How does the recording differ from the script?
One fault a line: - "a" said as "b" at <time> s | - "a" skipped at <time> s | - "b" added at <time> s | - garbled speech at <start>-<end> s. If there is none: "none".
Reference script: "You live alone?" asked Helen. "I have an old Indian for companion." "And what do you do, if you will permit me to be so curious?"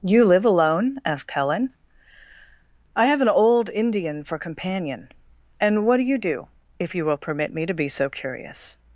none